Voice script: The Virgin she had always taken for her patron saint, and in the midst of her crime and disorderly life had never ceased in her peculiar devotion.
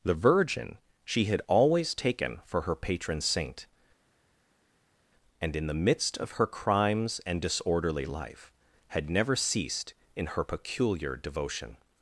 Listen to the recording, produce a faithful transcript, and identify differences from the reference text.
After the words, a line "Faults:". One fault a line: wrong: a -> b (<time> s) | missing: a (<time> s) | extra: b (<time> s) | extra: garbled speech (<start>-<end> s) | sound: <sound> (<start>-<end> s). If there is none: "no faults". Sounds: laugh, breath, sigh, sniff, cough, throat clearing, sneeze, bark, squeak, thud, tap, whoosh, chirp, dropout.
The Virgin she had always taken for her patron saint, and in the midst of her crimes and disorderly life had never ceased in her peculiar devotion.
Faults:
wrong: crime -> crimes (6.5 s)